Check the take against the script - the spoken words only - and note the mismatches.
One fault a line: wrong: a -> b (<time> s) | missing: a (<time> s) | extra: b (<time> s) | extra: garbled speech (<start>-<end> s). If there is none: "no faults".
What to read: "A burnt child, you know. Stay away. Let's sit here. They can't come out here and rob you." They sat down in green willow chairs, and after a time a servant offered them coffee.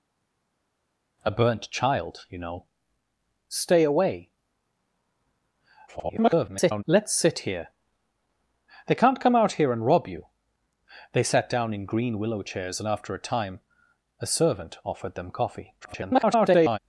extra: garbled speech (5.9-6.8 s)
extra: garbled speech (15.8-16.8 s)